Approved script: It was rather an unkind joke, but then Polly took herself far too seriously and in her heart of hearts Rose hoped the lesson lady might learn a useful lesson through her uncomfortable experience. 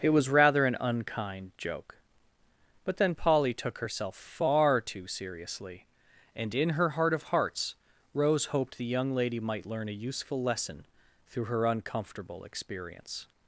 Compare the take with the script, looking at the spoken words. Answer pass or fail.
fail